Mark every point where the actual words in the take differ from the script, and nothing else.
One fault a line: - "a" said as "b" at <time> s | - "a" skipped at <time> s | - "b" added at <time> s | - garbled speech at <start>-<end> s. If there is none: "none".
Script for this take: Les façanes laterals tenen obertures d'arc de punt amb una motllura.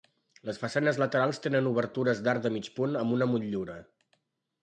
- "mig" added at 2.6 s